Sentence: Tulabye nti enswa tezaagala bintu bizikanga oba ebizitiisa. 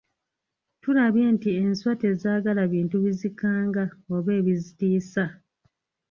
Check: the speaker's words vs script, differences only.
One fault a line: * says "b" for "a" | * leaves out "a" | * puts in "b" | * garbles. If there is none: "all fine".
all fine